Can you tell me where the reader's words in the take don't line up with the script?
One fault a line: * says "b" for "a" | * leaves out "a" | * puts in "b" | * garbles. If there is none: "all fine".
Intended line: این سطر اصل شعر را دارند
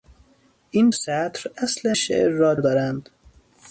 all fine